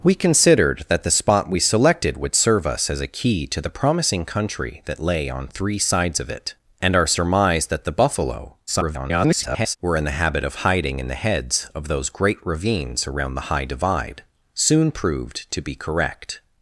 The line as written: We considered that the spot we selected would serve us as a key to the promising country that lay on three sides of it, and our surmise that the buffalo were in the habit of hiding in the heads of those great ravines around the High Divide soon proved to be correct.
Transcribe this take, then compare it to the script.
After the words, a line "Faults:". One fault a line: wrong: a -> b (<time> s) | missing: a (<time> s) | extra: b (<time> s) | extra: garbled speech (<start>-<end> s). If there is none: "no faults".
We considered that the spot we selected would serve us as a key to the promising country that lay on three sides of it, and our surmise that the buffalo [garbled] were in the habit of hiding in the heads of those great ravines around the High Divide soon proved to be correct.
Faults:
extra: garbled speech (8.7-9.8 s)